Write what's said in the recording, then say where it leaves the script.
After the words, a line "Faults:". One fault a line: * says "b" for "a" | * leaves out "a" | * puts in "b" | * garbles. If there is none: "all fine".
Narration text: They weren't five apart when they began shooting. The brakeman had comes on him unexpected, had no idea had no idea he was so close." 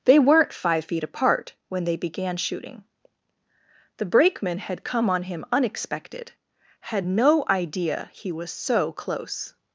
They weren't five feet apart when they began shooting. The brakeman had come on him unexpected, had no idea he was so close."
Faults:
* puts in "feet"
* says "come" for "comes"
* leaves out "had no idea"